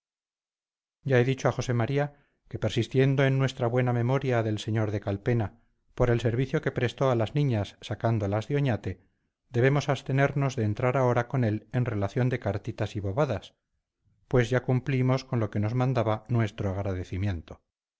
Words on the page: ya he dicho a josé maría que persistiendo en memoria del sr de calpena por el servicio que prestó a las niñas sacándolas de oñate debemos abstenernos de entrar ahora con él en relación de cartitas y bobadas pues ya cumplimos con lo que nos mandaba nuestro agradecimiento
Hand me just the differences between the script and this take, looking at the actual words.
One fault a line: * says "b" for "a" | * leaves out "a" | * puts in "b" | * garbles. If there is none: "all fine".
* puts in "nuestra buena"